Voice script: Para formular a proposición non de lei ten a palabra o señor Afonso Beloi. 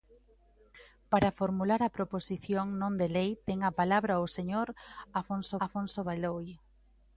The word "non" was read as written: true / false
true